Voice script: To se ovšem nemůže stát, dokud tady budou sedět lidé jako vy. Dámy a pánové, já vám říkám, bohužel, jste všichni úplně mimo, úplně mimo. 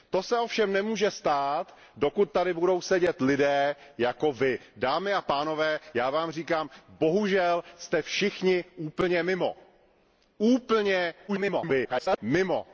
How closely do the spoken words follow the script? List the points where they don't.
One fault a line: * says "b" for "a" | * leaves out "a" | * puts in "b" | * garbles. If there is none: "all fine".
* garbles